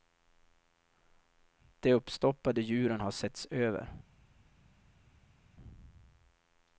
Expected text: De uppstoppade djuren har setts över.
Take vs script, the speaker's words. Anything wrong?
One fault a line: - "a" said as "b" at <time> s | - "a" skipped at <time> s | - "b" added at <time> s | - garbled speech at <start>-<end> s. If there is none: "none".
none